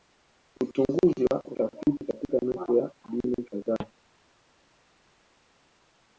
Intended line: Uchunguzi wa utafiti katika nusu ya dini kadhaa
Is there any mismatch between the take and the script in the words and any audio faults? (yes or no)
no